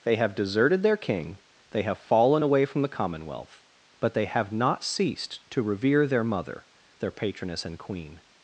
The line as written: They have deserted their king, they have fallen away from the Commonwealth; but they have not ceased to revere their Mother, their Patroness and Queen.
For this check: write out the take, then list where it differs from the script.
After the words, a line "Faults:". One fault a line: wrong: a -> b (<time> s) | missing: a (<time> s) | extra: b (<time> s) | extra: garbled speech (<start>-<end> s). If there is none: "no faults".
They have deserted their king, they have fallen away from the Commonwealth; but they have not ceased to revere their Mother, their Patroness and Queen.
Faults:
no faults